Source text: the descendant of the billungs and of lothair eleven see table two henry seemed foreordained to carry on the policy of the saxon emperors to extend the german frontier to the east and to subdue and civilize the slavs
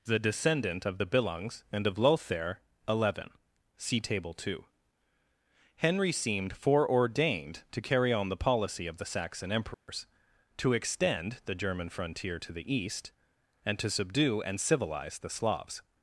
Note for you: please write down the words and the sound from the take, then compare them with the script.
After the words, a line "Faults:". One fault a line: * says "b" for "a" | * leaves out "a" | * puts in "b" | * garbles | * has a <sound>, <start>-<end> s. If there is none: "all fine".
the descendant of the billungs and of lothair eleven see table two henry seemed foreordained to carry on the policy of the saxon emperors to extend the german frontier to the east and to subdue and civilize the slavs
Faults:
* has a dropout, 9.7-9.9 s